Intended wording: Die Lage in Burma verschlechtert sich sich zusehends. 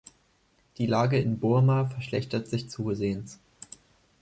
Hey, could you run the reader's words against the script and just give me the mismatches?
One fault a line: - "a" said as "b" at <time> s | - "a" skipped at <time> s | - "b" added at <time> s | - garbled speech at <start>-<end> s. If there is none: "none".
- "sich" skipped at 2.7 s